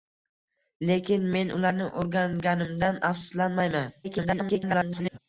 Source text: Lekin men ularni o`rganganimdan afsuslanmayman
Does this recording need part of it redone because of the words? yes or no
yes